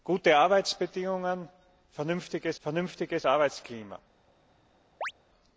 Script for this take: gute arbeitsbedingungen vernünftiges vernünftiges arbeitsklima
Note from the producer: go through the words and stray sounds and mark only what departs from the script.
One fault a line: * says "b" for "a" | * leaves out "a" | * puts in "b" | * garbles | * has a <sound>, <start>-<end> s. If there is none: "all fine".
* has a chirp, 5.0-5.1 s